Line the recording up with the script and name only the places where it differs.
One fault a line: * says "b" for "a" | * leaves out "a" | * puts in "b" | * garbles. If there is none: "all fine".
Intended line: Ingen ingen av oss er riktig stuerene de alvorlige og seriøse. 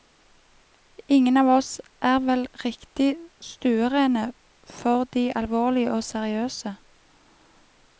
* leaves out "ingen"
* puts in "vel"
* puts in "for"